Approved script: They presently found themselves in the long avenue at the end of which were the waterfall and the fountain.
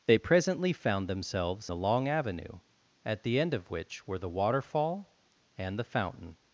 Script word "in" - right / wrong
wrong